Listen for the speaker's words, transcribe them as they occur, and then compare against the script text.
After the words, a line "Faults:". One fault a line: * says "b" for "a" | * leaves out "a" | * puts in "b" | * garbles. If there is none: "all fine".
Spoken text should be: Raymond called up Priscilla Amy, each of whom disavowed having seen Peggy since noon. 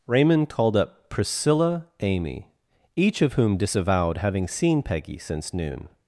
Raymond called up Priscilla Amy, each of whom disavowed having seen Peggy since noon.
Faults:
all fine